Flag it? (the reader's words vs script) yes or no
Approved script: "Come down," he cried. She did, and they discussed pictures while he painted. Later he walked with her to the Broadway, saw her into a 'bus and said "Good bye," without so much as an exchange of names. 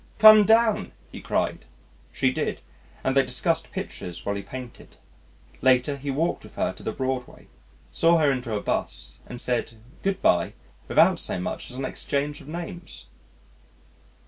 no